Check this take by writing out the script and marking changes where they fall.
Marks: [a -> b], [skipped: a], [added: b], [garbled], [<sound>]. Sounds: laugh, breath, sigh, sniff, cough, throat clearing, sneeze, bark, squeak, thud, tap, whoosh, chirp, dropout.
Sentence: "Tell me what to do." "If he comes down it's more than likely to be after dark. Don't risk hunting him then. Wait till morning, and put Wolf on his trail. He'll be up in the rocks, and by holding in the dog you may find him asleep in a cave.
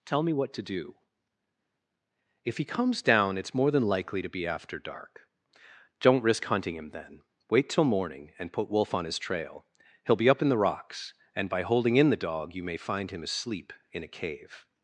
"Tell me what to do." "If he comes down it's more than likely to be after dark. Don't risk hunting him then. Wait till morning, and put Wolf on his trail. He'll be up in the rocks, and by holding in the dog you may find him asleep in a cave.